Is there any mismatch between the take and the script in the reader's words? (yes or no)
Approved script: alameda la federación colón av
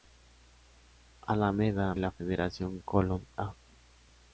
no